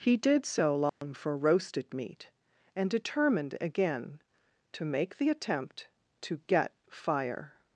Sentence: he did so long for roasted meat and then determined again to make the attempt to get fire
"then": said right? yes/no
no